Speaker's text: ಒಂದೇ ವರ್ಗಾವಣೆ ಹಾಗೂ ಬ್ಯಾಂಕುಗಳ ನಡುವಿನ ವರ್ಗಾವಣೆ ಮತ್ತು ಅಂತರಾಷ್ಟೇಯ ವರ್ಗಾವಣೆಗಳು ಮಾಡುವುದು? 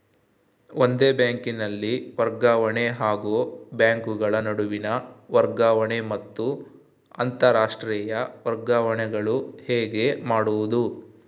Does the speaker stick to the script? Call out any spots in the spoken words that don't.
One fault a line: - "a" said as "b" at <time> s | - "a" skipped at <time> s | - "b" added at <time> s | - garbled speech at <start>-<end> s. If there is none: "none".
- "ಬ್ಯಾಂಕಿನಲ್ಲಿ" added at 1.1 s
- "ಹೇಗೆ" added at 9.7 s